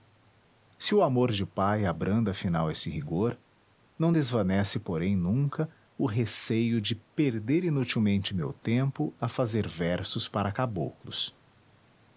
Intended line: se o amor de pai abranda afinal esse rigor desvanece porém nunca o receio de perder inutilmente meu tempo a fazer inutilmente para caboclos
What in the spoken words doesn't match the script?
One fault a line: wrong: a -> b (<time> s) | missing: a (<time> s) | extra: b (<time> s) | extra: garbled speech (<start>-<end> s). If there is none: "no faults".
extra: não (4.0 s)
wrong: inutilmente -> versos (9.7 s)